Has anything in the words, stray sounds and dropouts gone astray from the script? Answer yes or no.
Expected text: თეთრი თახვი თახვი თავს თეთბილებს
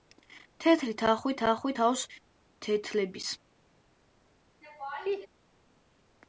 yes